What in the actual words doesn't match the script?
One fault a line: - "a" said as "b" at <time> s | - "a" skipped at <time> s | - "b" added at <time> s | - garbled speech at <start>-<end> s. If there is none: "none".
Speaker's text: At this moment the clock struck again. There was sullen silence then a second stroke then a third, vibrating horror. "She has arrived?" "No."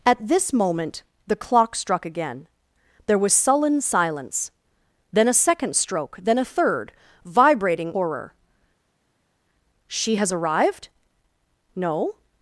none